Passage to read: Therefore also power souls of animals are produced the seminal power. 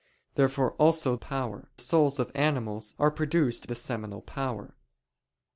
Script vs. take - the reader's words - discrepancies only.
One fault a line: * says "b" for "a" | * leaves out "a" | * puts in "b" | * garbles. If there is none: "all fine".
all fine